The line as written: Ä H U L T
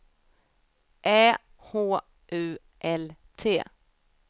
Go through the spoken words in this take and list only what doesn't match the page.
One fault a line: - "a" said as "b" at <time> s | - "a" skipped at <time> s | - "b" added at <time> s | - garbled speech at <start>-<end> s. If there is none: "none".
none